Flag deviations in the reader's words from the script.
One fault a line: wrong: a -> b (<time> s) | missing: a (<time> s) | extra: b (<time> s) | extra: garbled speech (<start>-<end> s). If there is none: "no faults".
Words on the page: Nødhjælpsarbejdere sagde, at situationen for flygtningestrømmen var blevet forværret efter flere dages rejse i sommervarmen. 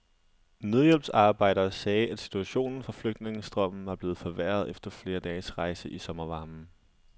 no faults